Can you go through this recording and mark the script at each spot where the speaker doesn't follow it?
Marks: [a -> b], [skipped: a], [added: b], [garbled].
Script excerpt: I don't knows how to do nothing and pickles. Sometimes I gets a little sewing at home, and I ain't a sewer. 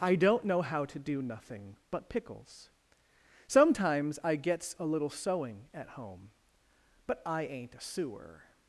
I don't [knows -> know] how to do nothing [and -> but] pickles. Sometimes I gets a little sewing at home, [and -> but] I ain't a sewer.